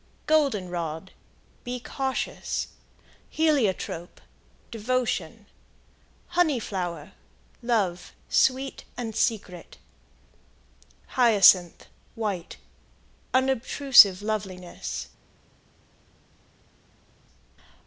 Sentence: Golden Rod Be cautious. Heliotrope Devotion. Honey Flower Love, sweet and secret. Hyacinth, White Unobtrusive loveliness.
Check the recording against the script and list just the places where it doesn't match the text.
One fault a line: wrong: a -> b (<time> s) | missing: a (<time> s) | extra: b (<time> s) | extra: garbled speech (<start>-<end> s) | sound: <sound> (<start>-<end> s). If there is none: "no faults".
no faults